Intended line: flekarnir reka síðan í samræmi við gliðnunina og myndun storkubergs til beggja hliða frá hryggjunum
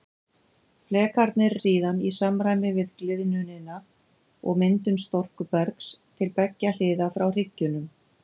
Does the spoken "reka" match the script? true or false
false